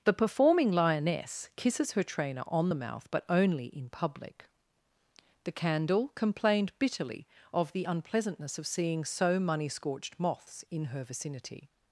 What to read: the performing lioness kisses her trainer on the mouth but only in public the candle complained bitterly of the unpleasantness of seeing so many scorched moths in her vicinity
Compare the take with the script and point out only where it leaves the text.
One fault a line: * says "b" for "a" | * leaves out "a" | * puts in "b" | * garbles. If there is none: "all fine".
* says "money" for "many"